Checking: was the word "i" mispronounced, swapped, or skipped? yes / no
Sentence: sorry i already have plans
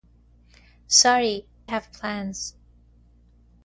yes